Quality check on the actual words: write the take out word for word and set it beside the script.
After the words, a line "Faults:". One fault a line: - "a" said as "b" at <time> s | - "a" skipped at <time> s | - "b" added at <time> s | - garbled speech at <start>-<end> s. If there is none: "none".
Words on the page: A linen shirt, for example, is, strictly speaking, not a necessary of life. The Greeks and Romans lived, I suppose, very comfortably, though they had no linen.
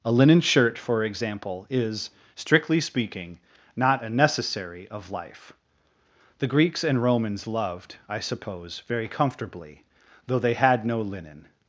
A linen shirt, for example, is, strictly speaking, not a necessary of life. The Greeks and Romans loved, I suppose, very comfortably, though they had no linen.
Faults:
- "lived" said as "loved" at 7.5 s